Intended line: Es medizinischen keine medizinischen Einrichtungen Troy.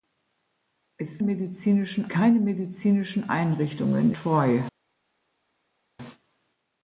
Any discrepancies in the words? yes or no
no